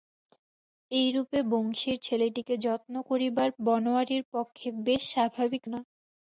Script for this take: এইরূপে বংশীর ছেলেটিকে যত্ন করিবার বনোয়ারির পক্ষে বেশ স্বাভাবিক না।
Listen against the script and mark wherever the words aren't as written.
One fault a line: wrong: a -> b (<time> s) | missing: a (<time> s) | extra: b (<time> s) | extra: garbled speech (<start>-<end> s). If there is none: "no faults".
no faults